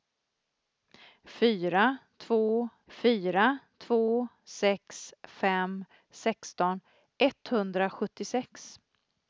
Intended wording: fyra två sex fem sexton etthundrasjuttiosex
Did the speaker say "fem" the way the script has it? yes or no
yes